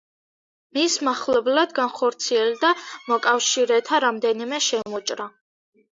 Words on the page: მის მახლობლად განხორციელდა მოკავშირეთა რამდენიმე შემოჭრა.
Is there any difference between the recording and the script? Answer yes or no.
no